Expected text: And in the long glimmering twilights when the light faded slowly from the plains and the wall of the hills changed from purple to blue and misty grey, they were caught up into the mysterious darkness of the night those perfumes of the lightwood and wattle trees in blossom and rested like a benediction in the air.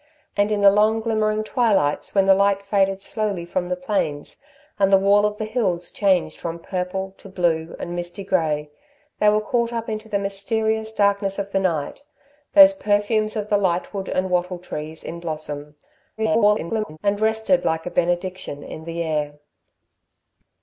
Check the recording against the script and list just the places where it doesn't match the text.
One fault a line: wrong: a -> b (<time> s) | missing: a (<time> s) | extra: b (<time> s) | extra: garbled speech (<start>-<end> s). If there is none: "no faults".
extra: garbled speech (16.2-17.0 s)